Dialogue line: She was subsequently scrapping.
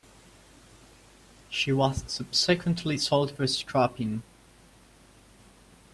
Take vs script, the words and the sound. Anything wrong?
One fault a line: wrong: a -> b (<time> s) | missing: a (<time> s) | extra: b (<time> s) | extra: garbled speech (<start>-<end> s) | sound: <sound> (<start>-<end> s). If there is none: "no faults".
extra: sold for (3.0 s)